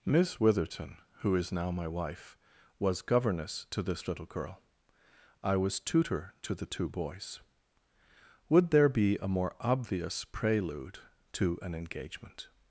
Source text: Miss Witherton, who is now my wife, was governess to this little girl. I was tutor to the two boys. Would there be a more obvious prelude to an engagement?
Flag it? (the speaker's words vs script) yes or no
no